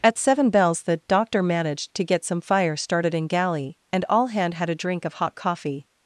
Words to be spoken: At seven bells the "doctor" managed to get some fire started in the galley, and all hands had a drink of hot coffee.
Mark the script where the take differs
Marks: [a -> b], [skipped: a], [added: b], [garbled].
At seven bells the "doctor" managed to get some fire started in [skipped: the] galley, and all [hands -> hand] had a drink of hot coffee.